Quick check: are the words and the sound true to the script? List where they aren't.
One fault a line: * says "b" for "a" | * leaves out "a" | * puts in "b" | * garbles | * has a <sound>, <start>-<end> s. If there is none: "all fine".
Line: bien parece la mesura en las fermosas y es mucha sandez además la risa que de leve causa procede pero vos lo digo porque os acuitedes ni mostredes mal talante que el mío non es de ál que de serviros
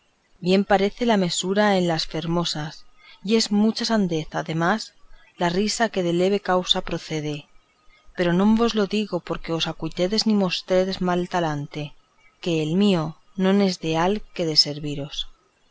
* puts in "no"